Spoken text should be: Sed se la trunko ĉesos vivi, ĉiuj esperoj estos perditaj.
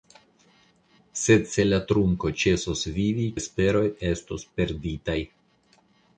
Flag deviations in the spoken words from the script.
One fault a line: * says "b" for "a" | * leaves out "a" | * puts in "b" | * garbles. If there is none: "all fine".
* leaves out "ĉiuj"